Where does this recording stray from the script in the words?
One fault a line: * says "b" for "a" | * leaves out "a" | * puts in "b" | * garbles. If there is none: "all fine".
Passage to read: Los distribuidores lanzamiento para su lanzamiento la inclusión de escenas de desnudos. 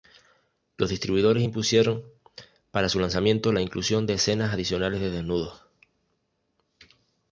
* says "impusieron" for "lanzamiento"
* puts in "adicionales"